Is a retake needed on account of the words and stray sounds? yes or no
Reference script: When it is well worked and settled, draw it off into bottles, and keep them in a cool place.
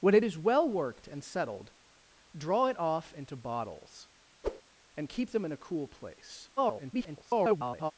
yes